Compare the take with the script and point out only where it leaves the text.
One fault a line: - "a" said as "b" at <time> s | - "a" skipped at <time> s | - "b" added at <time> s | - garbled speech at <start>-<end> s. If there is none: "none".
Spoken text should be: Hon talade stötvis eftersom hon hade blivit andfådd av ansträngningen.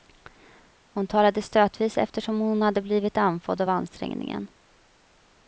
none